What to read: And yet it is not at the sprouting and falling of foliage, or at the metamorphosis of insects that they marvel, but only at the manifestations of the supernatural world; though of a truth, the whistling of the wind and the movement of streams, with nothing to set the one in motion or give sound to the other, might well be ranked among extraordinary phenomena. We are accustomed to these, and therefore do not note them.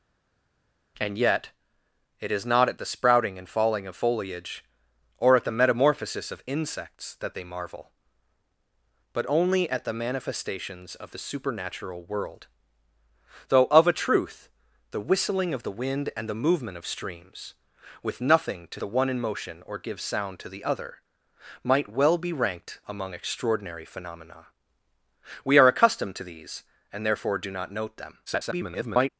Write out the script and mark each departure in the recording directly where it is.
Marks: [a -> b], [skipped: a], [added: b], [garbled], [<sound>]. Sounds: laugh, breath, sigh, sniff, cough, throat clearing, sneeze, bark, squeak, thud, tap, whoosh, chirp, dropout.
And yet it is not at the sprouting and falling of foliage, or at the metamorphosis of insects that they marvel, but only at the manifestations of the supernatural world; though of a truth, the whistling of the wind and the movement of streams, with nothing to [skipped: set] the one in motion or give sound to the other, might well be ranked among extraordinary phenomena. We are accustomed to these, and therefore do not note them. [garbled]